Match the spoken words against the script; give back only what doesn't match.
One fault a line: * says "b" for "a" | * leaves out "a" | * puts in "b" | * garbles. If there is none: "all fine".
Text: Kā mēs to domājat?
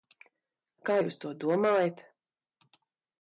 * says "jūs" for "mēs"